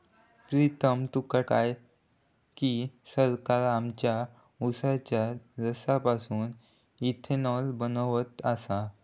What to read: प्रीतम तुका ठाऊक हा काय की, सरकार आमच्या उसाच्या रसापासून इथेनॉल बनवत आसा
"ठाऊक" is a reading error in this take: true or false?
true